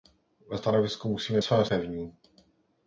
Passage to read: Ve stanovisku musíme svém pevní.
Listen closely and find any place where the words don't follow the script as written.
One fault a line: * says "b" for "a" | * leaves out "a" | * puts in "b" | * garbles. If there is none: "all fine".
all fine